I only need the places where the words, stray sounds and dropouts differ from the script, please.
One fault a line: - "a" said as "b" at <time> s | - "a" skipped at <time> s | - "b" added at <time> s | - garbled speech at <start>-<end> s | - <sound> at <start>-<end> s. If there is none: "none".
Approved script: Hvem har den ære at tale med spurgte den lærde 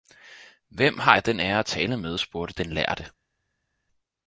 - "jeg" added at 1.1 s